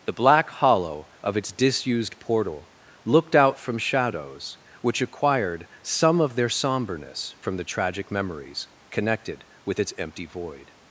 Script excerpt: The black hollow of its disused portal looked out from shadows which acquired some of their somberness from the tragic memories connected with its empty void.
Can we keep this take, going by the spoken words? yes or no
yes